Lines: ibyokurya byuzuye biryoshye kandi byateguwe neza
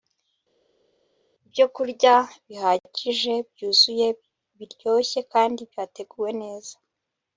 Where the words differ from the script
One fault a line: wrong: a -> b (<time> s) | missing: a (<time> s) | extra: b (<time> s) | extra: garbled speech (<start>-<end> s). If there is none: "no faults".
extra: bihagije (2.5 s)